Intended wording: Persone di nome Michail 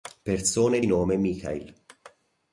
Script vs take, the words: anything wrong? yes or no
no